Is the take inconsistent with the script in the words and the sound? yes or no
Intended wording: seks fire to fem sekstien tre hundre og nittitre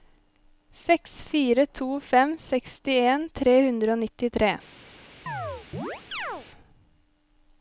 yes